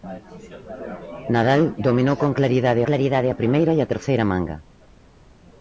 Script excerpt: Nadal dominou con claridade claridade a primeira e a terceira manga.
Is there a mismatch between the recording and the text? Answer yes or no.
no